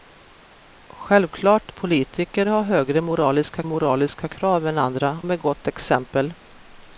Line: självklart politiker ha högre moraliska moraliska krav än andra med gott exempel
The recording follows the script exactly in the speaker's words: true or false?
true